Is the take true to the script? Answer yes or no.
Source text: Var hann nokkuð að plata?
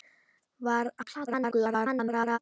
no